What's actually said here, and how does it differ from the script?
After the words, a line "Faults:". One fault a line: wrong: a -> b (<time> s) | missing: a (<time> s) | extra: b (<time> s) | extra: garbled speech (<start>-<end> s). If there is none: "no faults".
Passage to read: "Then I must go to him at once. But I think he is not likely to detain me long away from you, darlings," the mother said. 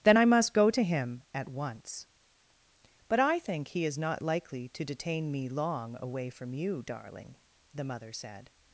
"Then I must go to him at once. But I think he is not likely to detain me long away from you, darling," the mother said.
Faults:
wrong: darlings -> darling (6.8 s)